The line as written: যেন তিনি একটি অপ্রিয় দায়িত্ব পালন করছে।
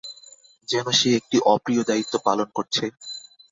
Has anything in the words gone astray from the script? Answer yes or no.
yes